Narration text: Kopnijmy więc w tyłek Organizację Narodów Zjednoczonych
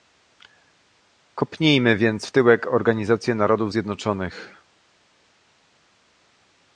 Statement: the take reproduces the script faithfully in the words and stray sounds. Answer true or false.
true